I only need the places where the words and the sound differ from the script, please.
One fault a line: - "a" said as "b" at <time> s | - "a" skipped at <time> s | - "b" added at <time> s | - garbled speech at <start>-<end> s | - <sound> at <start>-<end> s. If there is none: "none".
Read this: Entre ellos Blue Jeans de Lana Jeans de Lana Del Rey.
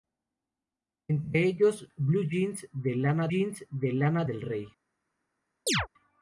- chirp at 5.7-5.9 s